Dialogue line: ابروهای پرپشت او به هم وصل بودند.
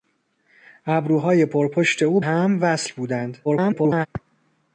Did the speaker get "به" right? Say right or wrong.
wrong